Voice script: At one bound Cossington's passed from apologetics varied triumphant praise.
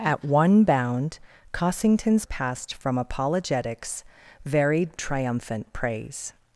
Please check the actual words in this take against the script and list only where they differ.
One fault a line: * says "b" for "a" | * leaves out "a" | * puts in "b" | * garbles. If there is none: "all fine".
all fine